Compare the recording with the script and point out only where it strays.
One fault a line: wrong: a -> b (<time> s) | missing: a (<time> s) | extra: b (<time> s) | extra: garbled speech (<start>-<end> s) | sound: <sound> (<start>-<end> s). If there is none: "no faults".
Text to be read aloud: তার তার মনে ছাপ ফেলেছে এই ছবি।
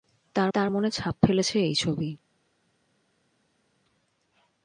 no faults